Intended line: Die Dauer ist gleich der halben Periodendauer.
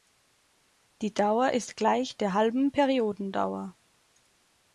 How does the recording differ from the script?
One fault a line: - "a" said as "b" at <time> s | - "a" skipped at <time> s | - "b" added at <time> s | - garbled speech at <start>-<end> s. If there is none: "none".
none